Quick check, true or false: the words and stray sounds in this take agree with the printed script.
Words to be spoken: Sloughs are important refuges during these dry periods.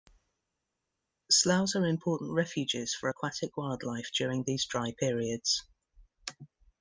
false